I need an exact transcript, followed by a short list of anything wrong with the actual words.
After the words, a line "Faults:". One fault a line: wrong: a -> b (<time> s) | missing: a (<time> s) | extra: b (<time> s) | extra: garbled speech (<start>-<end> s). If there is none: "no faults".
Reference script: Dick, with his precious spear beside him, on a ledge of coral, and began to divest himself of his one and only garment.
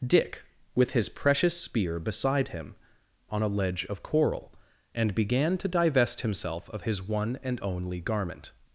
Dick, with his precious spear beside him, on a ledge of coral, and began to divest himself of his one and only garment.
Faults:
no faults